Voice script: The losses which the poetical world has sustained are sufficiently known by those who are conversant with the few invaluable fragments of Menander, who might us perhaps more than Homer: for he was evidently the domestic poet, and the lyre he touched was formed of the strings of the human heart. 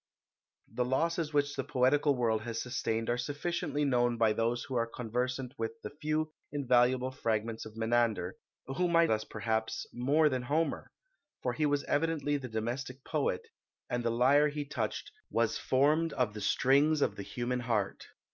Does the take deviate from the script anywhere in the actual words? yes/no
no